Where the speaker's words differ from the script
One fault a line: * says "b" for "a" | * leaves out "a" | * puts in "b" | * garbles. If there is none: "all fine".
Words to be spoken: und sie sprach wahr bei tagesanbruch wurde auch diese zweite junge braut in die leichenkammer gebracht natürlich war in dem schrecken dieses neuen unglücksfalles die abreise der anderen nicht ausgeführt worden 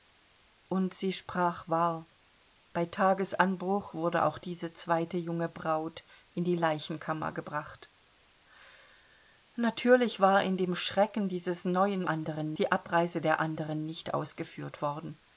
* says "anderen" for "unglücksfalles"